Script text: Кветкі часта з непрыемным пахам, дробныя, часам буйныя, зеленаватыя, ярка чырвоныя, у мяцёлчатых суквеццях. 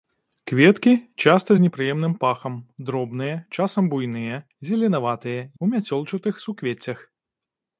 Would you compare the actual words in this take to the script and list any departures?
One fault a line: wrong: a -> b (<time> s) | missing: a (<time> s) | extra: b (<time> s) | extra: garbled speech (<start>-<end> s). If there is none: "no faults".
missing: ярка чырвоныя (5.4 s)